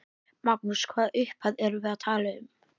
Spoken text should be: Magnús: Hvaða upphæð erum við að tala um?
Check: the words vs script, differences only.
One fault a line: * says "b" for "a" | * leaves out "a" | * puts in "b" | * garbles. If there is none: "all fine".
all fine